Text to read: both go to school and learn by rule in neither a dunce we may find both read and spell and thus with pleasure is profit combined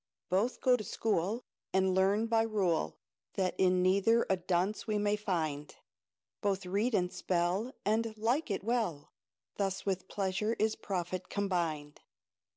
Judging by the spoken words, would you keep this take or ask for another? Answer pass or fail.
fail